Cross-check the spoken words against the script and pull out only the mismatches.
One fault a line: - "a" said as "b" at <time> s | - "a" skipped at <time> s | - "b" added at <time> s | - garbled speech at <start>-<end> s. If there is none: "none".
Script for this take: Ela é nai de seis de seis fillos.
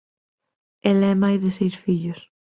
- "de seis" skipped at 1.8 s